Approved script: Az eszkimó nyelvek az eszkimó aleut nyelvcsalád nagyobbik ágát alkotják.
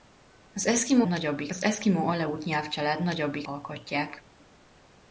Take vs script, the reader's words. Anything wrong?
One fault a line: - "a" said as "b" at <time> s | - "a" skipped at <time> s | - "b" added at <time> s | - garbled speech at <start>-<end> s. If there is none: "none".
- "nyelvek" said as "nagyobbik" at 1.1 s
- "ágát" skipped at 3.5 s